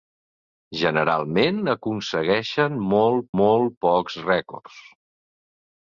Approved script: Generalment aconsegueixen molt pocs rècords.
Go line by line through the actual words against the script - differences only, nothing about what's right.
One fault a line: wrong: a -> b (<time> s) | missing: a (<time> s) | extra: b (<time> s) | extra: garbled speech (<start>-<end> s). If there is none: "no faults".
extra: molt (3.4 s)